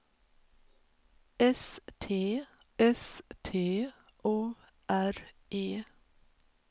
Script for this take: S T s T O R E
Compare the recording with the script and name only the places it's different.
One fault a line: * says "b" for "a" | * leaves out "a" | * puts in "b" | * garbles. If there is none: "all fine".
all fine